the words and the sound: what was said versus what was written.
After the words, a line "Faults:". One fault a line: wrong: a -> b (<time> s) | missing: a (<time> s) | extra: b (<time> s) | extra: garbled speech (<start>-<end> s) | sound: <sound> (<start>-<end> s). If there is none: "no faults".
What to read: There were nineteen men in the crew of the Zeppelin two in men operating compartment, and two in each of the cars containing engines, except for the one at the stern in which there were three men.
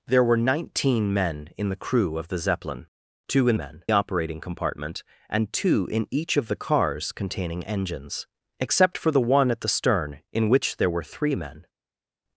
There were nineteen men in the crew of the Zeppelin two in men operating compartment, and two in each of the cars containing engines, except for the one at the stern in which there were three men.
Faults:
no faults